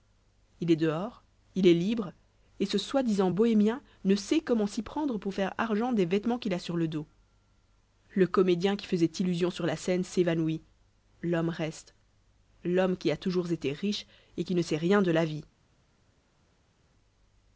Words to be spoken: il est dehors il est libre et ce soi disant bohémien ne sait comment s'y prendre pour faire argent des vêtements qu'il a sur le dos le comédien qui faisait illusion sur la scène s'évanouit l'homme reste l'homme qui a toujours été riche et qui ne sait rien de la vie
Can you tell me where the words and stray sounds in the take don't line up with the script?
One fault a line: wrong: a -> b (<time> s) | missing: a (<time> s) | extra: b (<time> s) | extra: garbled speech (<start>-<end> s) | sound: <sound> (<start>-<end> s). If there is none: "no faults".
no faults